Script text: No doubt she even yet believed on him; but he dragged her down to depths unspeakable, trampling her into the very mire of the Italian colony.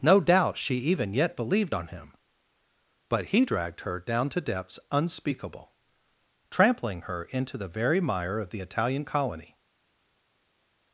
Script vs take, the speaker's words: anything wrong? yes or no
no